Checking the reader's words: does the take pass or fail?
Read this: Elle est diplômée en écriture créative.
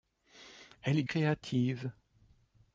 fail